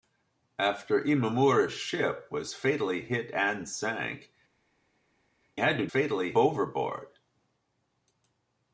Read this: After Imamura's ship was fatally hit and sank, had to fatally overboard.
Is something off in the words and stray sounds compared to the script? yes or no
no